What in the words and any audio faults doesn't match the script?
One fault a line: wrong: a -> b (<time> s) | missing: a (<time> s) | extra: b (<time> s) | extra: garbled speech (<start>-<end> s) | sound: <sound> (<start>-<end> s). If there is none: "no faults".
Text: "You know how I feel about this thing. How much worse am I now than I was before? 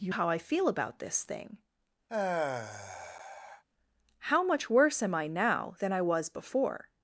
missing: know (0.1 s)
sound: sigh (2.1-3.6 s)